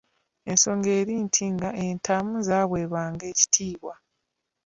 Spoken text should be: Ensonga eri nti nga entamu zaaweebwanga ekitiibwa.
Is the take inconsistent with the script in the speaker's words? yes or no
no